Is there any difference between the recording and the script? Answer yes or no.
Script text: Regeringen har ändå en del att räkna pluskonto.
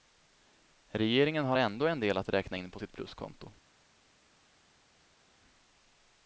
yes